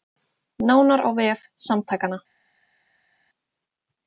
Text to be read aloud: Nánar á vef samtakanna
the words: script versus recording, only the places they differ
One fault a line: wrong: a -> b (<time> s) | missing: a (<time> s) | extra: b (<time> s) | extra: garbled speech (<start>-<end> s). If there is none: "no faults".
no faults